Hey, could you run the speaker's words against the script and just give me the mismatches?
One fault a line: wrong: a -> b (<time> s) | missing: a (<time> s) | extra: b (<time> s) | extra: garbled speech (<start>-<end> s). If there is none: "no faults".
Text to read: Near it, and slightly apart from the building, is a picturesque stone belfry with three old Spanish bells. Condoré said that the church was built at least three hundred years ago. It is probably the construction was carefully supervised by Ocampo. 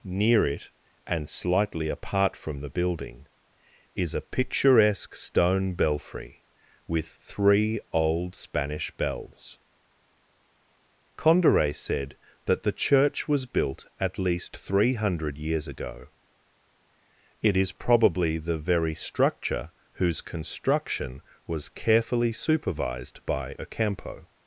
extra: very structure whose (18.6 s)